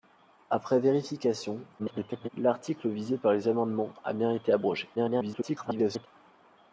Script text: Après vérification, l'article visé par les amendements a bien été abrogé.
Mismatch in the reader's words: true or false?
true